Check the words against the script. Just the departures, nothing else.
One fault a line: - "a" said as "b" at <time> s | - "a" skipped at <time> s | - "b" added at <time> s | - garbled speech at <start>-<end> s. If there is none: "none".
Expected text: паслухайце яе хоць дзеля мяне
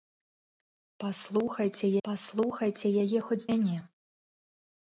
- "паслухайце" added at 2.1 s
- "дзеля" skipped at 3.4 s